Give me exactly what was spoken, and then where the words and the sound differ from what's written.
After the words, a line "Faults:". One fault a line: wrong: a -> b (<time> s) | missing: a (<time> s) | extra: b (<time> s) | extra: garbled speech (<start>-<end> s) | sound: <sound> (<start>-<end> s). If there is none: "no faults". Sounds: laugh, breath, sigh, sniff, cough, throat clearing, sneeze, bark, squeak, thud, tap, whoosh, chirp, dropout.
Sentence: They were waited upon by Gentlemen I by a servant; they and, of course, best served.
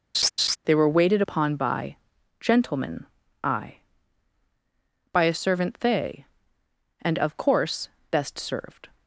They were waited upon by Gentlemen I by a servant; they and, of course, best served.
Faults:
sound: laugh (0.1-0.6 s)